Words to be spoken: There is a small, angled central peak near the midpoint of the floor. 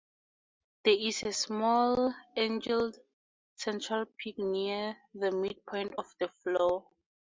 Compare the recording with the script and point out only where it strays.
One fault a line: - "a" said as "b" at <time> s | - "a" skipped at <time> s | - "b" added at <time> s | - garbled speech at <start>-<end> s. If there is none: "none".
none